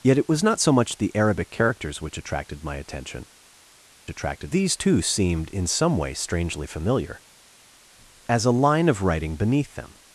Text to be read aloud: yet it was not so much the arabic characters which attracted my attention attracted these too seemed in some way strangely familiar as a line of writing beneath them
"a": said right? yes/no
yes